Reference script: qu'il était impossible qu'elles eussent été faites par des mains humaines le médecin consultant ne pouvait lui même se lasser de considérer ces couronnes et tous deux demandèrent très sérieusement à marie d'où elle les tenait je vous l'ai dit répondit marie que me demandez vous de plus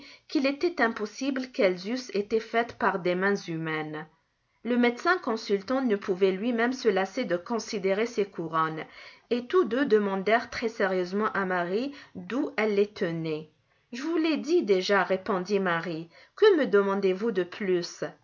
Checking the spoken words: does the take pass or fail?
fail